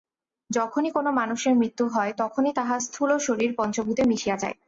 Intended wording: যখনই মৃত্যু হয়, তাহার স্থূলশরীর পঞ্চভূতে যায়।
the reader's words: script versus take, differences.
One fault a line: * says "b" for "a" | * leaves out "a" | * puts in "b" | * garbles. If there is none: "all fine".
* puts in "কোন মানুষের"
* puts in "তখনই"
* puts in "মিশিয়া"